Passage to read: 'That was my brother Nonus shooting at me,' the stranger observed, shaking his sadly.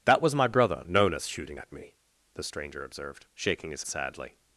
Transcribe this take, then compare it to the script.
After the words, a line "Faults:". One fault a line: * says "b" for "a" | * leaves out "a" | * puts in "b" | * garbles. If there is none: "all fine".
'That was my brother Nonus shooting at me,' the stranger observed, shaking his sadly.
Faults:
all fine